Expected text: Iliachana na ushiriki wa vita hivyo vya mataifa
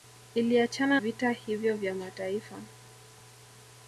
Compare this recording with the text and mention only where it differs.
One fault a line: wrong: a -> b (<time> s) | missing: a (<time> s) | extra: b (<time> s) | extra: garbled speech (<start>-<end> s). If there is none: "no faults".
missing: na ushiriki wa (1.0 s)